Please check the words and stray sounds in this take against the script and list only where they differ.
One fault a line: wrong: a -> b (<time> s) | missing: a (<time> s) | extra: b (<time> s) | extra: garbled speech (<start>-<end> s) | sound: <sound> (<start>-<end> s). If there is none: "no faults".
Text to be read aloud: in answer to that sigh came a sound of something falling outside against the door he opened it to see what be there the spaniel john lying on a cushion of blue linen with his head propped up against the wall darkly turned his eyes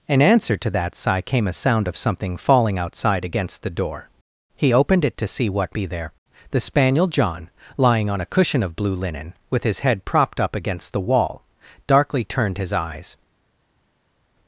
no faults